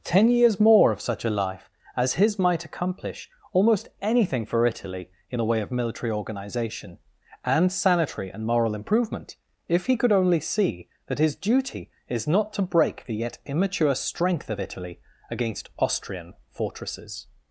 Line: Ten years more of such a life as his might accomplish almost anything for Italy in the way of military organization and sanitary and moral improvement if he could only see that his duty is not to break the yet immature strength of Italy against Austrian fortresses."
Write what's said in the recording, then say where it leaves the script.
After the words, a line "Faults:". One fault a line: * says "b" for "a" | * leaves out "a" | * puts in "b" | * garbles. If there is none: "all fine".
Ten years more of such a life as his might accomplish almost anything for Italy in the way of military organization and sanitary and moral improvement if he could only see that his duty is not to break the yet immature strength of Italy against Austrian fortresses."
Faults:
all fine